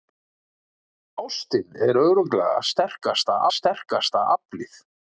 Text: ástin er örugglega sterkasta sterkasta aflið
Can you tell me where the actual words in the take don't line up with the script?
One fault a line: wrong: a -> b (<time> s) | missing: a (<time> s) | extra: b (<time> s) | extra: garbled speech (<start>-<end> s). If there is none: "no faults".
no faults